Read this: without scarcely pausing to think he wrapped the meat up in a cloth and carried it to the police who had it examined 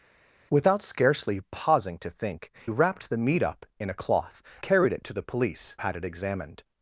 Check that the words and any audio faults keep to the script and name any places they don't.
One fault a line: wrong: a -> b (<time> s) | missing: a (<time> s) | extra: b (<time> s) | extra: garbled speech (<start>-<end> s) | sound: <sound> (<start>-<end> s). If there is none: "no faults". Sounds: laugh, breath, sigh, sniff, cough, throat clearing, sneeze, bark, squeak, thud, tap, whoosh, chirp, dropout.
missing: he (2.5 s)
missing: and (4.4 s)
missing: who (5.8 s)